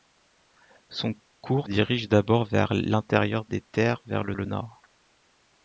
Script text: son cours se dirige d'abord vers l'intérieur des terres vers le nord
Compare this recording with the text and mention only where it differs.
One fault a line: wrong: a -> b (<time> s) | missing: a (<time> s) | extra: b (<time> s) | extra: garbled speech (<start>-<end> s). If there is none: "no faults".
missing: se (1.7 s)
extra: le (4.3 s)